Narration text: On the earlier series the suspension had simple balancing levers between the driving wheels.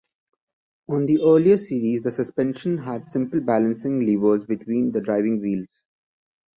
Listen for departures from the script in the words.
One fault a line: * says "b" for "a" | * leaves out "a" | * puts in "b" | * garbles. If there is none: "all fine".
all fine